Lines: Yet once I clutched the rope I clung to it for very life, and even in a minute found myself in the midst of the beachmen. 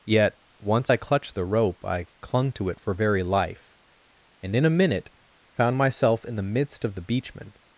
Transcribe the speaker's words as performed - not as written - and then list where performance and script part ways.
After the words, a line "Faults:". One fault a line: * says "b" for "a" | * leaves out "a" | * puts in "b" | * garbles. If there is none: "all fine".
Yet once I clutched the rope I clung to it for very life, and in a minute found myself in the midst of the beachmen.
Faults:
* leaves out "even"